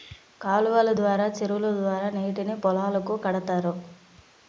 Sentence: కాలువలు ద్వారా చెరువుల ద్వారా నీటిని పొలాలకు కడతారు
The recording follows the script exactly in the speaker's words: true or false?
true